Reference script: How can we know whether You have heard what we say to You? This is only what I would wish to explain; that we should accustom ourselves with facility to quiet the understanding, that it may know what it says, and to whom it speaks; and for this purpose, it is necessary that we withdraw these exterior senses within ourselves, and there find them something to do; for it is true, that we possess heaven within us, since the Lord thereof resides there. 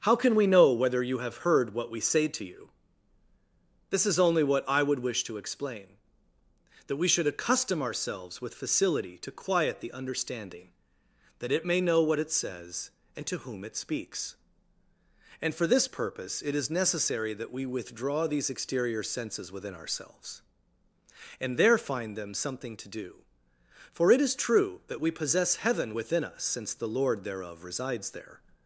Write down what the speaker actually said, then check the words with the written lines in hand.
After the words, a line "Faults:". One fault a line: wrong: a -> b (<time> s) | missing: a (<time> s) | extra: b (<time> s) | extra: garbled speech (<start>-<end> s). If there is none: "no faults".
How can we know whether You have heard what we say to You? This is only what I would wish to explain; that we should accustom ourselves with facility to quiet the understanding, that it may know what it says, and to whom it speaks; and for this purpose, it is necessary that we withdraw these exterior senses within ourselves, and there find them something to do; for it is true, that we possess heaven within us, since the Lord thereof resides there.
Faults:
no faults